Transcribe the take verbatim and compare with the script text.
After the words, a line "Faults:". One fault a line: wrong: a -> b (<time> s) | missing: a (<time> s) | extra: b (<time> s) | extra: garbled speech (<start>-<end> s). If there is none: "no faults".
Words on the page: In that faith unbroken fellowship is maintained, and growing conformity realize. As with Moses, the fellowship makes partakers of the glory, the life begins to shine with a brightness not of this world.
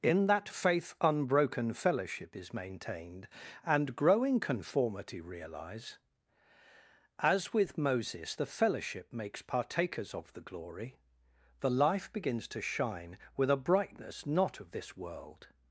In that faith unbroken fellowship is maintained, and growing conformity realize. As with Moses, the fellowship makes partakers of the glory, the life begins to shine with a brightness not of this world.
Faults:
no faults